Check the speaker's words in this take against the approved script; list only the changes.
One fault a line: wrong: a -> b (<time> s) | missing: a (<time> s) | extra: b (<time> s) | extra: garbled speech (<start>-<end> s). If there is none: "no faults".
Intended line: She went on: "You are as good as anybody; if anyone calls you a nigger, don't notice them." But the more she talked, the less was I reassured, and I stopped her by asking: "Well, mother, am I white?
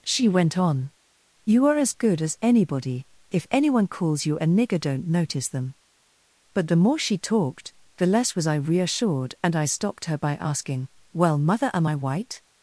no faults